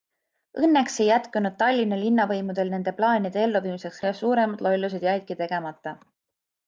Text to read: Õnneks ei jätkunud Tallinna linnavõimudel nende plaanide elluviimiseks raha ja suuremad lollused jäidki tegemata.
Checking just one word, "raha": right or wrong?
wrong